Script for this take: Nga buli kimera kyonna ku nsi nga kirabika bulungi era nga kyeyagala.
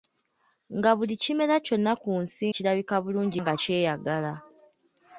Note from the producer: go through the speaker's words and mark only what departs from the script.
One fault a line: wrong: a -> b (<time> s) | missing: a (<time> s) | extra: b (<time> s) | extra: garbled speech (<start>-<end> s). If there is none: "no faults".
missing: nga (2.5 s)
missing: era (3.4 s)